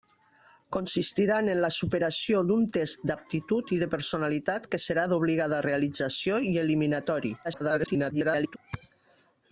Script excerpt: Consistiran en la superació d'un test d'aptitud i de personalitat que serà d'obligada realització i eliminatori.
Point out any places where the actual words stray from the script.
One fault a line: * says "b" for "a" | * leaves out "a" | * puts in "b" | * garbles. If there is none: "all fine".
* garbles